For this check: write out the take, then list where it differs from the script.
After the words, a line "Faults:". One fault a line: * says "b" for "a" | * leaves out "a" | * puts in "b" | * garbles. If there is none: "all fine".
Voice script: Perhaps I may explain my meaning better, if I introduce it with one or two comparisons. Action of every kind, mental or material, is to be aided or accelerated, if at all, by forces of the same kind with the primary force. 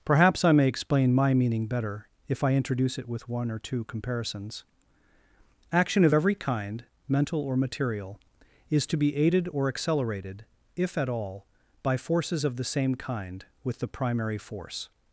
Perhaps I may explain my meaning better, if I introduce it with one or two comparisons. Action of every kind, mental or material, is to be aided or accelerated, if at all, by forces of the same kind with the primary force.
Faults:
all fine